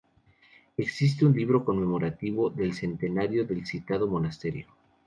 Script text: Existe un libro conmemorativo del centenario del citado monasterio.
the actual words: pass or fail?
pass